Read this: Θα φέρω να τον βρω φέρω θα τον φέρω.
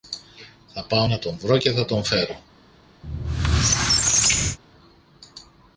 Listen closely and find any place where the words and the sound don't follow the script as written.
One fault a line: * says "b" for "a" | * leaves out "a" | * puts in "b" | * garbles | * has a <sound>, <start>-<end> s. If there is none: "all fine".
* says "πάω" for "φέρω"
* says "και" for "φέρω"
* has a squeak, 3.0-4.6 s